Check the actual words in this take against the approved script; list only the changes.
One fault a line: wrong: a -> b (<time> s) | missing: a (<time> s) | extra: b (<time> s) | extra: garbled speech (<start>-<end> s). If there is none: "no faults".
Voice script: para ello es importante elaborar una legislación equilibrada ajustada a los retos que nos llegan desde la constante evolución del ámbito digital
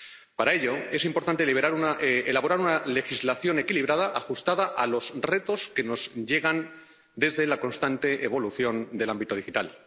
no faults